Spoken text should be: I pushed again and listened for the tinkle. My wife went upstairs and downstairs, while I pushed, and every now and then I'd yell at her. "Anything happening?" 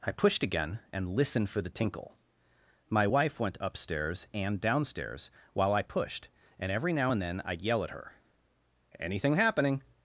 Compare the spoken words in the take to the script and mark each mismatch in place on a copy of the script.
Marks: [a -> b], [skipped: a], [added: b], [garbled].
I pushed again and listened for the tinkle. My wife went upstairs and downstairs, while I pushed, and every now and then I'd yell at her. "Anything happening?"